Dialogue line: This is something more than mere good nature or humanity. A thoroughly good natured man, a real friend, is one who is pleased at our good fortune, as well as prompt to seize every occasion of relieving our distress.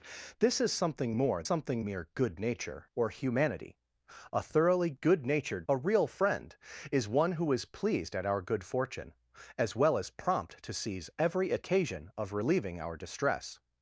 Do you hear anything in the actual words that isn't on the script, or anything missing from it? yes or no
yes